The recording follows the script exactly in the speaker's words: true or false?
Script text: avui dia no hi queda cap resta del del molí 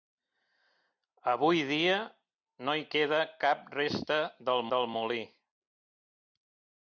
true